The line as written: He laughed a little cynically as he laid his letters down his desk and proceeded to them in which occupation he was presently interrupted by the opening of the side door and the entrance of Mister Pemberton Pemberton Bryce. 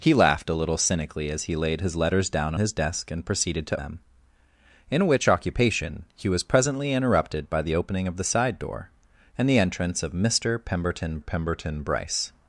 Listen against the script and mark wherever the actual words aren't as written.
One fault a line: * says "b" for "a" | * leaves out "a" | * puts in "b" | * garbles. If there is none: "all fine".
all fine